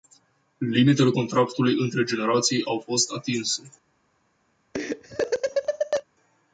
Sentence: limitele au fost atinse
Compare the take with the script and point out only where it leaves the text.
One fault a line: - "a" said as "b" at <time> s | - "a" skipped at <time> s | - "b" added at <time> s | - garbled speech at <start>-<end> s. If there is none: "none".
- "contractului între generații" added at 1.1 s